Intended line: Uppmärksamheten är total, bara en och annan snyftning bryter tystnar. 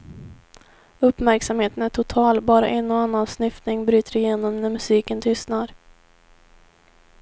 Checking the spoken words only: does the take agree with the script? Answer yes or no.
no